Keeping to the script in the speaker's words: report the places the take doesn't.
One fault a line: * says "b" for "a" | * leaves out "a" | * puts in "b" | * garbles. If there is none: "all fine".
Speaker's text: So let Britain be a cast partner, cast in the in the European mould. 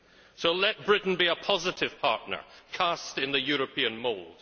* says "positive" for "cast"
* leaves out "in the"